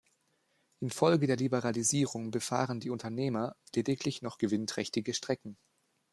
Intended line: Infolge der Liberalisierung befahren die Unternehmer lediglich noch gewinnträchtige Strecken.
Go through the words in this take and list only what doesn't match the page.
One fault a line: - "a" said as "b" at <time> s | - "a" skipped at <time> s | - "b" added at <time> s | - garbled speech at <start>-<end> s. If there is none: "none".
none